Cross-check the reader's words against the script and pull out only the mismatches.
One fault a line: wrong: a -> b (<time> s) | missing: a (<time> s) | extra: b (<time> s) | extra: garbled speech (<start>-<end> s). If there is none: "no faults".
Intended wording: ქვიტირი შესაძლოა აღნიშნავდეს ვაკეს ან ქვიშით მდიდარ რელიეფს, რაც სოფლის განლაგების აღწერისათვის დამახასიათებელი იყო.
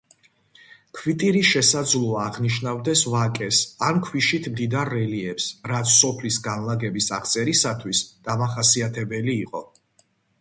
no faults